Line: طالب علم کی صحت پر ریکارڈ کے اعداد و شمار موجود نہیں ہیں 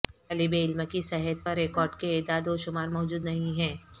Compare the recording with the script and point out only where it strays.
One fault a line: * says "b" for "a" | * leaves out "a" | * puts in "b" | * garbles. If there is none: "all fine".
all fine